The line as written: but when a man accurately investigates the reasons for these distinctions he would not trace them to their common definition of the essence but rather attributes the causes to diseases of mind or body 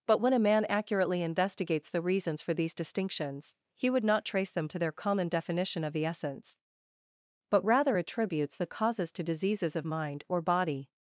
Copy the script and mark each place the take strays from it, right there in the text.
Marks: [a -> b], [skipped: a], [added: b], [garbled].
but when a man accurately investigates the reasons for these distinctions he would not trace them to their common definition of the essence but rather attributes the causes to diseases of mind or body